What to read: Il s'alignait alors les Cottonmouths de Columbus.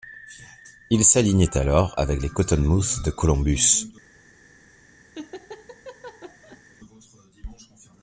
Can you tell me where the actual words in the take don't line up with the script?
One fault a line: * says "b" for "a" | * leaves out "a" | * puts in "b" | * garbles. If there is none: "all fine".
* puts in "avec"